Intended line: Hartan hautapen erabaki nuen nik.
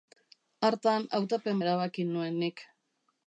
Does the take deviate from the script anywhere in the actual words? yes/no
no